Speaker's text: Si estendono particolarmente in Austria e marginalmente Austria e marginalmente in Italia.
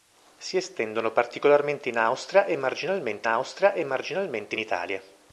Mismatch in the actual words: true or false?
false